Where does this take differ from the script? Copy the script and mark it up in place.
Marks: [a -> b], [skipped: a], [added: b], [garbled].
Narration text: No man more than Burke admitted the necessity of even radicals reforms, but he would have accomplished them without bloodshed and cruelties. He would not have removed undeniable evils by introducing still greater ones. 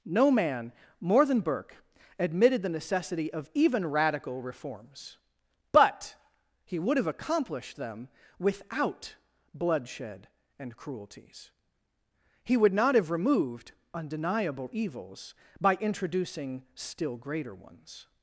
No man more than Burke admitted the necessity of even [radicals -> radical] reforms, but he would have accomplished them without bloodshed and cruelties. He would not have removed undeniable evils by introducing still greater ones.